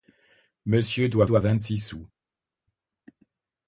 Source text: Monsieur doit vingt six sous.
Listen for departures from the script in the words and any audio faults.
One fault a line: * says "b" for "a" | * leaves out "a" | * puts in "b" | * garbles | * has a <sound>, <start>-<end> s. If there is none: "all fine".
* puts in "doit"